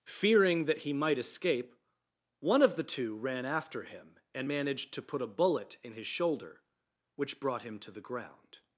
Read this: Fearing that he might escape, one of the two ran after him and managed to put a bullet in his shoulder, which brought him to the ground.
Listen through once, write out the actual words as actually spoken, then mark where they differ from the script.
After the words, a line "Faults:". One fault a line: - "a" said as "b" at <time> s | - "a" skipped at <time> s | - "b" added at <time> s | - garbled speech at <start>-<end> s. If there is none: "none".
Fearing that he might escape, one of the two ran after him and managed to put a bullet in his shoulder, which brought him to the ground.
Faults:
none